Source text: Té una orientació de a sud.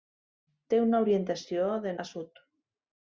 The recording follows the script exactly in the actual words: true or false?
true